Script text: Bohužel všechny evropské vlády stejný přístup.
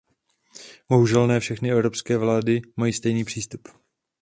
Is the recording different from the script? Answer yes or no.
yes